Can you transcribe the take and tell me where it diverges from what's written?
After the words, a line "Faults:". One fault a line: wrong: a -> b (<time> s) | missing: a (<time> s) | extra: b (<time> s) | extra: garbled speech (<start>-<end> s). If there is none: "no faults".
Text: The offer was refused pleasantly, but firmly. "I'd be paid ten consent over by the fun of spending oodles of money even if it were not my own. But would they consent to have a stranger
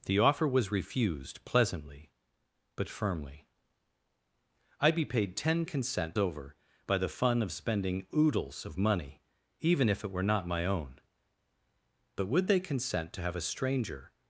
The offer was refused pleasantly, but firmly. "I'd be paid ten consent over by the fun of spending oodles of money even if it were not my own. But would they consent to have a stranger
Faults:
no faults